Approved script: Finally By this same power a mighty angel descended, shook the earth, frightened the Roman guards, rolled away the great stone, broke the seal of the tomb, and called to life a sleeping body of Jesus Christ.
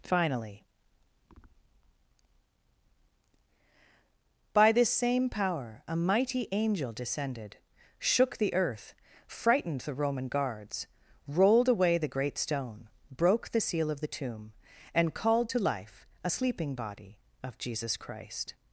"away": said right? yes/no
yes